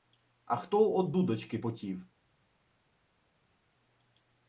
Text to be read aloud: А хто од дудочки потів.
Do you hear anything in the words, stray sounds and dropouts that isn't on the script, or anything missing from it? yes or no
no